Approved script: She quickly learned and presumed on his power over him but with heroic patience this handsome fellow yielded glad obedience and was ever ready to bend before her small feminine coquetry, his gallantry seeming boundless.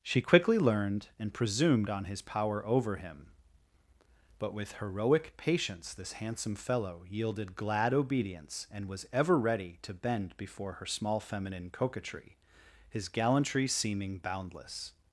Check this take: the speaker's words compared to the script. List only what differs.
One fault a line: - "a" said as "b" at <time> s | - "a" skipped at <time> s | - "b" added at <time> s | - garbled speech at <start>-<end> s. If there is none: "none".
none